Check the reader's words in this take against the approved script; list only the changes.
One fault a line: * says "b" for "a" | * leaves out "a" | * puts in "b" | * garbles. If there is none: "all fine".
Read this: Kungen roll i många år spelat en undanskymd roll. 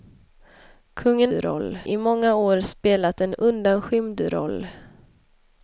all fine